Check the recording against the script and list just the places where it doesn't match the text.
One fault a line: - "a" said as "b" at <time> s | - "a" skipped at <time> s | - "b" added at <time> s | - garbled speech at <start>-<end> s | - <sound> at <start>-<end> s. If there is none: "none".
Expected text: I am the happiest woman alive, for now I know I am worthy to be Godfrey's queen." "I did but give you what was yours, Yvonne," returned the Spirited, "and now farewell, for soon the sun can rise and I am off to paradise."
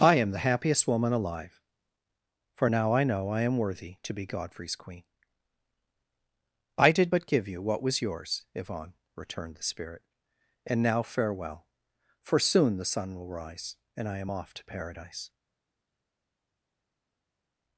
- "Spirited" said as "Spirit" at 9.6 s
- "can" said as "will" at 13.2 s